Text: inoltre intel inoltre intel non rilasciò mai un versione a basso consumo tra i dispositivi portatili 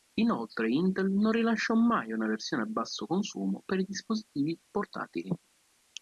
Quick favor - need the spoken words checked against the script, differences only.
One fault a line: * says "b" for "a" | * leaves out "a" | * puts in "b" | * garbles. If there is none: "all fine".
* leaves out "inoltre intel"
* says "una" for "un"
* says "per" for "tra"